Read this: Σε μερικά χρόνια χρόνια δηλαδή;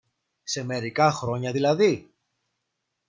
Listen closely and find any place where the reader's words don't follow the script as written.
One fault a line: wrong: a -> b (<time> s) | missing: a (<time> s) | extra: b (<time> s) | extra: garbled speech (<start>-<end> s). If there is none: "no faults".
missing: χρόνια (1.5 s)